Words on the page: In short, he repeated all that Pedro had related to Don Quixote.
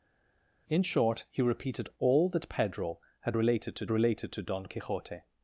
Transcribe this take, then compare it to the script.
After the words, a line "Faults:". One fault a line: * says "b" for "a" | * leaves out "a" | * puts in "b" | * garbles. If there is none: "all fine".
In short, he repeated all that Pedro had related to related to Don Quixote.
Faults:
* puts in "related to"